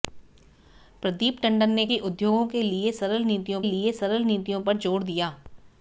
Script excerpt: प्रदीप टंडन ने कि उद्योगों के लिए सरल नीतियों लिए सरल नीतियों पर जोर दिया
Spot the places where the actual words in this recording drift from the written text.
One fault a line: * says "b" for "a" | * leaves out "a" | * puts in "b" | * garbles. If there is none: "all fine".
all fine